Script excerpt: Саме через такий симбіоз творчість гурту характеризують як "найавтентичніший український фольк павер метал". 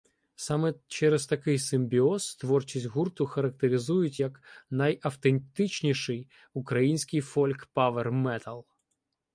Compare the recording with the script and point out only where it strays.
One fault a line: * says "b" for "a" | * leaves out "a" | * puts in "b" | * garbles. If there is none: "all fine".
all fine